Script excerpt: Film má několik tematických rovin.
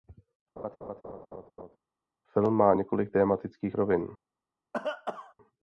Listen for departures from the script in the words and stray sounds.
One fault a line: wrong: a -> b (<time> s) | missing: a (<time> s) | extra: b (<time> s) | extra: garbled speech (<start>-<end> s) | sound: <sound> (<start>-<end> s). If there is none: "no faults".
sound: laugh (0.6-1.8 s)
sound: cough (4.7-5.3 s)